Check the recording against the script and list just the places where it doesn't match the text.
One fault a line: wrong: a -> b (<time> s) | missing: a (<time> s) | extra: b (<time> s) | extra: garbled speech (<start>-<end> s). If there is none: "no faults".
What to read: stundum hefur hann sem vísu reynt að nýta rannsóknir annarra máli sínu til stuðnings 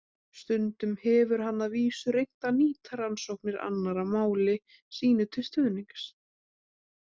wrong: sem -> að (1.6 s)